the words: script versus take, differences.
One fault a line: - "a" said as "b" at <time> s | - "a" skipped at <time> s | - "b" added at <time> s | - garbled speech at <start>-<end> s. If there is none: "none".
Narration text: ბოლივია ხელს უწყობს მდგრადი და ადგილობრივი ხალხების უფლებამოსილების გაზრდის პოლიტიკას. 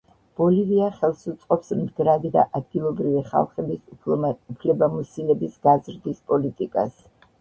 none